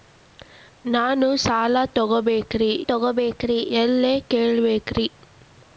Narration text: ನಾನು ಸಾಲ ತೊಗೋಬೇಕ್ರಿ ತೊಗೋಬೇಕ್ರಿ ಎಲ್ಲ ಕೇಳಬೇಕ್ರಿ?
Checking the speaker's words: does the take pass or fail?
pass